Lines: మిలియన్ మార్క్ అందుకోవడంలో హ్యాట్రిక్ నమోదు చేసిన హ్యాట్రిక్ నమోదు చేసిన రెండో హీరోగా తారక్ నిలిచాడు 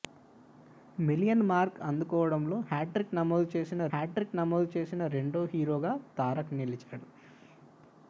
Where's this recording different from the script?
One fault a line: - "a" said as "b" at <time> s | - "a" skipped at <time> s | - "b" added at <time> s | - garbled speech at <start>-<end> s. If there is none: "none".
none